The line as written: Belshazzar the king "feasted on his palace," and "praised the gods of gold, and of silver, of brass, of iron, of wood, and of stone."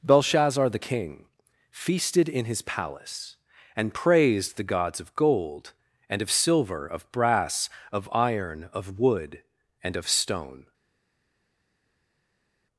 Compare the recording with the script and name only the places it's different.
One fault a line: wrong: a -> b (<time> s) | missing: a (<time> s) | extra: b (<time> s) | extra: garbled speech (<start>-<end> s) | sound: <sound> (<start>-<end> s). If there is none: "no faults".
wrong: on -> in (2.3 s)